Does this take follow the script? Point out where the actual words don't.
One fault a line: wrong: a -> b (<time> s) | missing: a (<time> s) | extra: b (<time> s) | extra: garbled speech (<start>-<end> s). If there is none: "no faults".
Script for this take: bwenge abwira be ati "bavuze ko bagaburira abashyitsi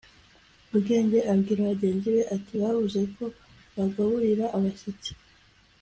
extra: bagenzi (1.7 s)